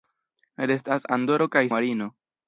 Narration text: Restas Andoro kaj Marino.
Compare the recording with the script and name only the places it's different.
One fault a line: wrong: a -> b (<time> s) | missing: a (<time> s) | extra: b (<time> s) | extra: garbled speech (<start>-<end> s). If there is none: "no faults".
no faults